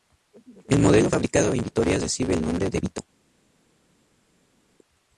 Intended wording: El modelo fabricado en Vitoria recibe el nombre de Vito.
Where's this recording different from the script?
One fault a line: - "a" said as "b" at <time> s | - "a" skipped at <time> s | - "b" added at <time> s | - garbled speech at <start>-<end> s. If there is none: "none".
none